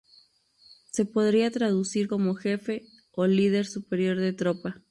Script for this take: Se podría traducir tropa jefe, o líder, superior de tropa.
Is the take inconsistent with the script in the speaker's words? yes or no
yes